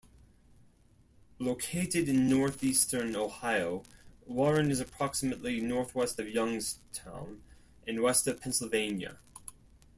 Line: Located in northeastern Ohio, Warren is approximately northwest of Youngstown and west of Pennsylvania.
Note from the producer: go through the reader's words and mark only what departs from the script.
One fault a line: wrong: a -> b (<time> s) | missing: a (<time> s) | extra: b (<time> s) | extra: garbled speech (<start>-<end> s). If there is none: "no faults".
no faults